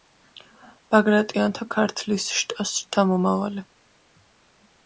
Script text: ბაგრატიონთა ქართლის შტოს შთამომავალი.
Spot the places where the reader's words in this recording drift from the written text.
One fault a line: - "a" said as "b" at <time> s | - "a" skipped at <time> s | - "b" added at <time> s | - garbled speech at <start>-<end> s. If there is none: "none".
none